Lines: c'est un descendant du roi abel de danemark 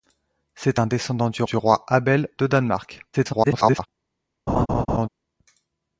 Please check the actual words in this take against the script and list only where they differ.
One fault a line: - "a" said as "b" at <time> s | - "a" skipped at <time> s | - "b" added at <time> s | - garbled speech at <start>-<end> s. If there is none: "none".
- "du" added at 1.4 s
- garbled speech at 3.1-3.9 s